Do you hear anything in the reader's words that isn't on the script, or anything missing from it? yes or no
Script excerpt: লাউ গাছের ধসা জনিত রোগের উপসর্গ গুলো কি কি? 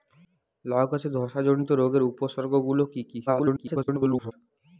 yes